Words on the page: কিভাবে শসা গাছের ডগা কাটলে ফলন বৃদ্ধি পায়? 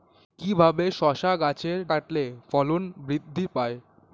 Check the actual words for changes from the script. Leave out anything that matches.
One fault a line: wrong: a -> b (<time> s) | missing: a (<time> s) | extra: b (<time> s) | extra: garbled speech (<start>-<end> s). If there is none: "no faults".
missing: ডগা (1.8 s)